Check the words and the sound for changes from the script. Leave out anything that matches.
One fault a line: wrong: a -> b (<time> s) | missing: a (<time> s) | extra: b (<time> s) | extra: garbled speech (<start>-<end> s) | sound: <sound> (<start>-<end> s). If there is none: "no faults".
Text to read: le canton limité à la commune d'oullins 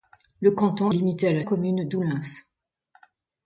no faults